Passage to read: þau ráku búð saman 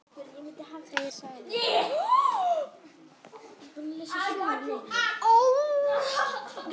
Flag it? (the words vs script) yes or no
yes